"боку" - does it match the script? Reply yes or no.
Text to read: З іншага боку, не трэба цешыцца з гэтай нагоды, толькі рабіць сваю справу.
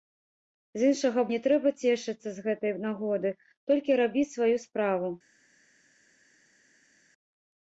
no